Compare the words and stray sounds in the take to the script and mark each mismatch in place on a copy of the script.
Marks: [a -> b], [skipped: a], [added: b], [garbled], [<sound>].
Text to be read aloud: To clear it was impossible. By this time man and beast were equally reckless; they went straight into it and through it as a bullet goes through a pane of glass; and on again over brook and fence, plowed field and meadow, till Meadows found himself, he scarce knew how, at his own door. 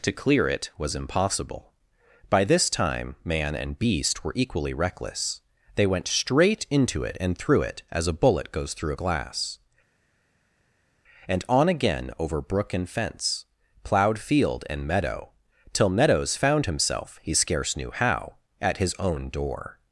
To clear it was impossible. By this time man and beast were equally reckless; they went straight into it and through it as a bullet goes through [skipped: a pane of] glass; and on again over brook and fence, plowed field and meadow, till Meadows found himself, he scarce knew how, at his own door.